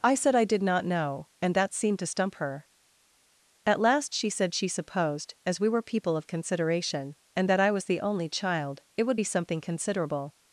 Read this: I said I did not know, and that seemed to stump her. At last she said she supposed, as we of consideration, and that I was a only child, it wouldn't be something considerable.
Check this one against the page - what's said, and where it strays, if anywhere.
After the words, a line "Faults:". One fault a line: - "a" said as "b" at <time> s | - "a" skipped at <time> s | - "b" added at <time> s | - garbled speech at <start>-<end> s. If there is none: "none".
I said I did not know, and that seemed to stump her. At last she said she supposed, as we were people of consideration, and that I was the only child, it would be something considerable.
Faults:
- "were people" added at 5.7 s
- "a" said as "the" at 7.8 s
- "wouldn't" said as "would" at 9.0 s